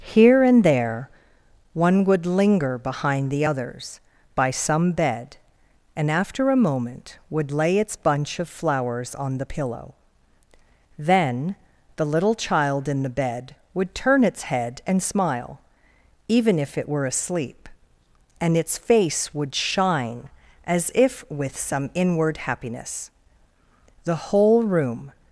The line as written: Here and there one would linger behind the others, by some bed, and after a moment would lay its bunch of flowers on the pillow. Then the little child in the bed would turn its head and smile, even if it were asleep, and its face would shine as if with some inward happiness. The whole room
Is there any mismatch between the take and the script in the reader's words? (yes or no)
no